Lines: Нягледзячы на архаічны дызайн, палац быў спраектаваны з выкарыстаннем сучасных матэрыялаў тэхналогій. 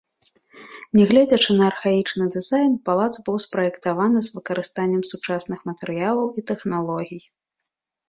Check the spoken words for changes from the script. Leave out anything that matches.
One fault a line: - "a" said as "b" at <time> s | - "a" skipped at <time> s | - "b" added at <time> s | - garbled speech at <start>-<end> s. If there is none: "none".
- "і" added at 6.4 s